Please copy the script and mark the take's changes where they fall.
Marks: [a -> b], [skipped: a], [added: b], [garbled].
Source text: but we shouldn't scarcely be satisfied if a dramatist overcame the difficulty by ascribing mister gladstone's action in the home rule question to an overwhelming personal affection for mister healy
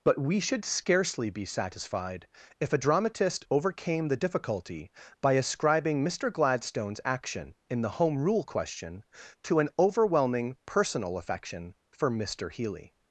but we [shouldn't -> should] scarcely be satisfied if a dramatist overcame the difficulty by ascribing mister gladstone's action in the home rule question to an overwhelming personal affection for mister healy